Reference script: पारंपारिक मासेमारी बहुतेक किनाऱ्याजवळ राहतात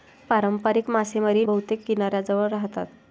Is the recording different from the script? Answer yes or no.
no